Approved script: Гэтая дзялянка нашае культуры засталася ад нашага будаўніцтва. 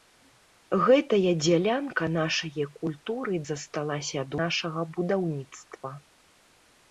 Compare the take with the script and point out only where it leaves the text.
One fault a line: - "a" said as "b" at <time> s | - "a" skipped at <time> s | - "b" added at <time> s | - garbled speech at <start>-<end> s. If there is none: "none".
none